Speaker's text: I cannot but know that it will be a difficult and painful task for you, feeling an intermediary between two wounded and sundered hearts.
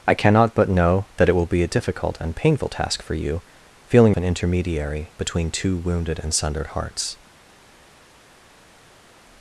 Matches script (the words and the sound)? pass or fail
pass